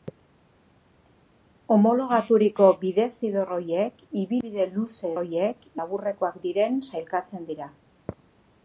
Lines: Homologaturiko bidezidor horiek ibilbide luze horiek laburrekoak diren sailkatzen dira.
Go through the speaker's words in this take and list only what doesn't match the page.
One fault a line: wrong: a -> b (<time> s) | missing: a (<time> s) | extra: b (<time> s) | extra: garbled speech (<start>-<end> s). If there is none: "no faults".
no faults